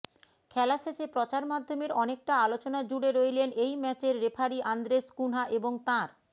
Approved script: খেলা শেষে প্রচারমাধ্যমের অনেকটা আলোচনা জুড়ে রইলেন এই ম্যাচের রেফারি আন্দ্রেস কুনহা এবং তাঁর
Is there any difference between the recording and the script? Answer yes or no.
no